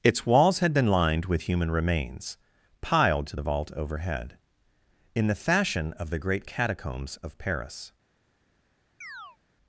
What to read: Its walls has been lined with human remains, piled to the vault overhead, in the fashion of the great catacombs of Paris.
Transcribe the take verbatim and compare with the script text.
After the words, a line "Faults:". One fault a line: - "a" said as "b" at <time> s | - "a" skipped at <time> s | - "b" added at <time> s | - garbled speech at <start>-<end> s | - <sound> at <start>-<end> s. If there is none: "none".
Its walls had been lined with human remains, piled to the vault overhead, in the fashion of the great catacombs of Paris.
Faults:
- "has" said as "had" at 0.6 s
- chirp at 9.0-9.4 s